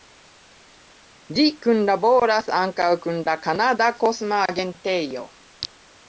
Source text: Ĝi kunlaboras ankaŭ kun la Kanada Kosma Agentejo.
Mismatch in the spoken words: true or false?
false